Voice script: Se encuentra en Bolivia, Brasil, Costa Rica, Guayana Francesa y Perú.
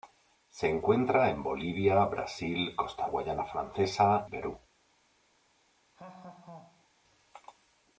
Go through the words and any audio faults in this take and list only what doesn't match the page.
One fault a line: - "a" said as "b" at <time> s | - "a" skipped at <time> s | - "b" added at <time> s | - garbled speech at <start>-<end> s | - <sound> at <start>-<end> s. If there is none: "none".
- "Rica" skipped at 3.1 s
- "y" skipped at 4.2 s
- laugh at 5.9-6.9 s